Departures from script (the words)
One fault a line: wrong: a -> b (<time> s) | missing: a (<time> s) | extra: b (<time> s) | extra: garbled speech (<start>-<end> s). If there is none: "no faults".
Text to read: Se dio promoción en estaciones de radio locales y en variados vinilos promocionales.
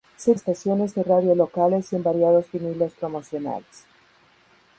missing: dio promoción en (0.3 s)